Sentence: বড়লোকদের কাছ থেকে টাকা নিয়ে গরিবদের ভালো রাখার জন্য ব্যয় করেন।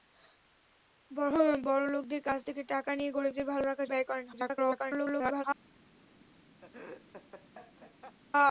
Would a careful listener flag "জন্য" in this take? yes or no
yes